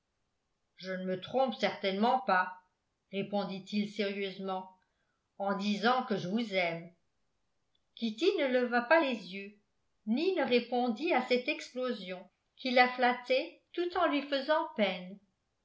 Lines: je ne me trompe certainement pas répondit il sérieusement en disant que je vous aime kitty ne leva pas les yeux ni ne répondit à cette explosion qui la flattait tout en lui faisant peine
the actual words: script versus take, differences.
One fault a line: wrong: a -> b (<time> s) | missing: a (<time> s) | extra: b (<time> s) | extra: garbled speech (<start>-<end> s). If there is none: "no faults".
no faults